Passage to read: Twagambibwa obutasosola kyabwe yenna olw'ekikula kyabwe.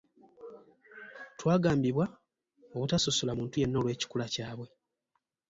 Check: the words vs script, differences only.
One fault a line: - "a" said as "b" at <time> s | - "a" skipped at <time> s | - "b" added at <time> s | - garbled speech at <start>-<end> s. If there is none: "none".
- "kyabwe" said as "muntu" at 3.4 s